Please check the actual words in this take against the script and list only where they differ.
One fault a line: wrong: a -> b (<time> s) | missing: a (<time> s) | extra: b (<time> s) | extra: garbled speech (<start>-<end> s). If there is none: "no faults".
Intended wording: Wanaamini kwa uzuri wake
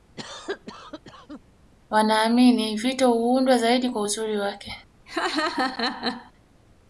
extra: vito huundwa zaidi (2.8 s)